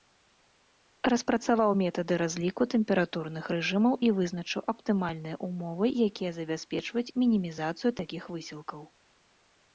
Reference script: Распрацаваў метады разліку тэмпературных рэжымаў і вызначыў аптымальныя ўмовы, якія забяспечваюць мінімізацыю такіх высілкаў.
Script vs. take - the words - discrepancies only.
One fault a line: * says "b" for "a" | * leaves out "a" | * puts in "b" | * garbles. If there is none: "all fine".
all fine